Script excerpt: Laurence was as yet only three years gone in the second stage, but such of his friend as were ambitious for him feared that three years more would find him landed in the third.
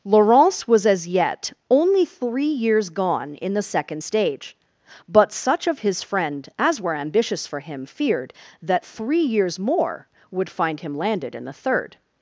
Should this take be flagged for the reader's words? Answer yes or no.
no